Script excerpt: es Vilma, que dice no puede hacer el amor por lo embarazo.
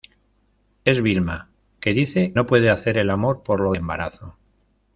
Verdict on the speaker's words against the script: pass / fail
pass